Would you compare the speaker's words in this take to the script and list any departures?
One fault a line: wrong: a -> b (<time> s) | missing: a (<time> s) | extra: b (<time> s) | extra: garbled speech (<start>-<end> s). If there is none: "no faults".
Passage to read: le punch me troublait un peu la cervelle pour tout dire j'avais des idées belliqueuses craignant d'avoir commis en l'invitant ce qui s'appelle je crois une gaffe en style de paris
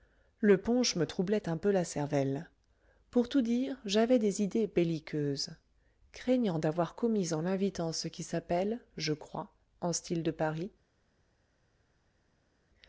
missing: une gaffe (9.5 s)